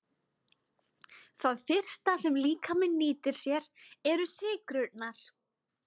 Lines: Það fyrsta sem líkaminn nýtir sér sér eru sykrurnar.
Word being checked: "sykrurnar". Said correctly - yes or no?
yes